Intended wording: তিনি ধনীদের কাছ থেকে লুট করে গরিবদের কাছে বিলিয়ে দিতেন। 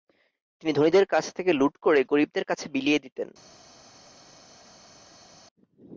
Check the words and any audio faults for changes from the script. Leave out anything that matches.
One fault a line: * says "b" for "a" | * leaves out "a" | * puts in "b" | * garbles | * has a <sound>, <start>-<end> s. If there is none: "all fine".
all fine